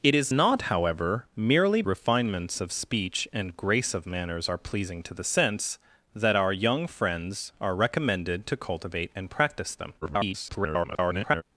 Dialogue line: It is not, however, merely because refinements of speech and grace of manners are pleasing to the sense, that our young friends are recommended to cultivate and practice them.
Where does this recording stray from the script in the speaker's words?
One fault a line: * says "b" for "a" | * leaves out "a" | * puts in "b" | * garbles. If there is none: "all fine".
* leaves out "because"
* garbles